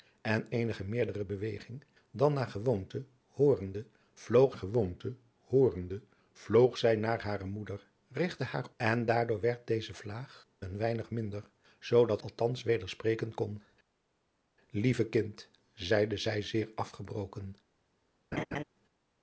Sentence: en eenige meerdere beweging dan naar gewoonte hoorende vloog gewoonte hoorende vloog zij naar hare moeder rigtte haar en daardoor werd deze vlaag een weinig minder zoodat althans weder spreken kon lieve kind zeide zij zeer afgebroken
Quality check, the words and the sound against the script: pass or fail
fail